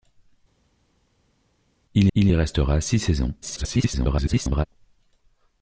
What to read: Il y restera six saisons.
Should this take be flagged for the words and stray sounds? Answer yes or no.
yes